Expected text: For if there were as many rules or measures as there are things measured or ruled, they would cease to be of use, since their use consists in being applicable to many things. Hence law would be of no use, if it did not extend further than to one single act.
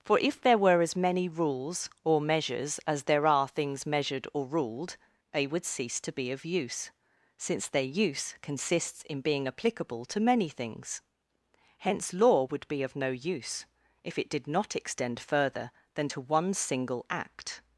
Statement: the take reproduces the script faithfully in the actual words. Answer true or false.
true